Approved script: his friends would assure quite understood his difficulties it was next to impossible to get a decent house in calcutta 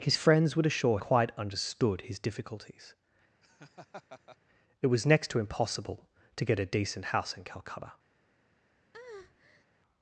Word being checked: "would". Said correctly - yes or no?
yes